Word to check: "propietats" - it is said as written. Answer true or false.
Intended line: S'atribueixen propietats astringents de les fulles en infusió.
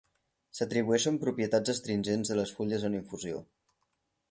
true